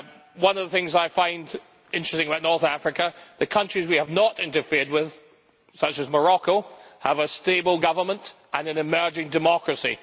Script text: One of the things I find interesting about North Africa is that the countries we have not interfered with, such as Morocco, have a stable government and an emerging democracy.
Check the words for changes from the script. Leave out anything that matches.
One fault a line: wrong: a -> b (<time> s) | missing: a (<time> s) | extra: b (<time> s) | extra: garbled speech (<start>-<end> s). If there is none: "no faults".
no faults